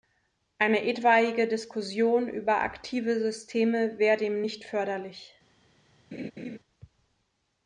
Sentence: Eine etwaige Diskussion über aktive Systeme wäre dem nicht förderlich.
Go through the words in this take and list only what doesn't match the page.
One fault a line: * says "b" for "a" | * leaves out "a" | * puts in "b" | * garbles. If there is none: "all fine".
all fine